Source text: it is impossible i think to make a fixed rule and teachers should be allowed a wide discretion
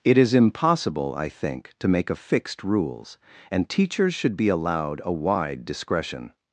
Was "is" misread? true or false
false